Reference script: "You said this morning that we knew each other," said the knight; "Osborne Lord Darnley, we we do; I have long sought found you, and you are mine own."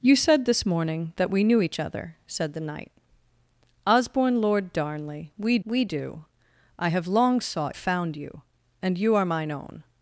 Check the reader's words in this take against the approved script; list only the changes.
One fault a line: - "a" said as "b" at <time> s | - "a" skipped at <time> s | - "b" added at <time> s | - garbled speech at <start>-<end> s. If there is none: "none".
none